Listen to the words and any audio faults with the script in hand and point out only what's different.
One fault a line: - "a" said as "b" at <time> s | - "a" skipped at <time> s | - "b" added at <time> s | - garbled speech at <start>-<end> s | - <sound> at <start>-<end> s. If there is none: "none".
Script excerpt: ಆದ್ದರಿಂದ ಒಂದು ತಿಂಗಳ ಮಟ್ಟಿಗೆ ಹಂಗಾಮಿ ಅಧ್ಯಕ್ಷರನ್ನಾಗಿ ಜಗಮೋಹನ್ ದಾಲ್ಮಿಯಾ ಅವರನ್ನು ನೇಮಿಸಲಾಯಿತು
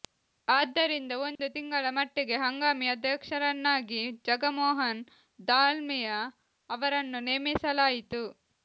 - dropout at 1.4-1.4 s